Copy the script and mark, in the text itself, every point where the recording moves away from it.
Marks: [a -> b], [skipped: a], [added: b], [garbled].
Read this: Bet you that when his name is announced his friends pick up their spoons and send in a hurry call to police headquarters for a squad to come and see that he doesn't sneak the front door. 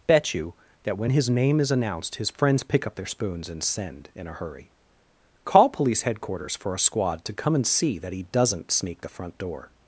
Bet you that when his name is announced his friends pick up their spoons and send in a hurry call [skipped: to] police headquarters for a squad to come and see that he doesn't sneak the front door.